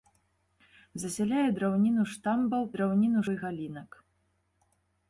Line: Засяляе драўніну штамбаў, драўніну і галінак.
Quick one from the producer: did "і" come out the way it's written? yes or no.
yes